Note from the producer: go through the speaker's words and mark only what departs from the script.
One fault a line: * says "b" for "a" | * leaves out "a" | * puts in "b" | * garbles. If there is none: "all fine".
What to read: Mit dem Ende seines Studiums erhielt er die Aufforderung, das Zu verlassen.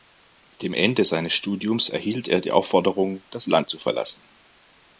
* puts in "Land"